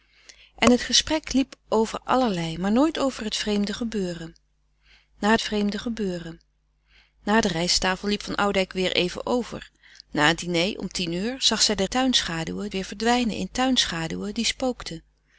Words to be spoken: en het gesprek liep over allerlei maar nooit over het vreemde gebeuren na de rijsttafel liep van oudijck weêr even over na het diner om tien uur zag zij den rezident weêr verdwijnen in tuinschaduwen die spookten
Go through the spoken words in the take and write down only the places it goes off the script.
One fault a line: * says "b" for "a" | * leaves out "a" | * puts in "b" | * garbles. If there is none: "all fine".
* puts in "vreemde gebeuren na"
* says "tuinschaduwen" for "rezident"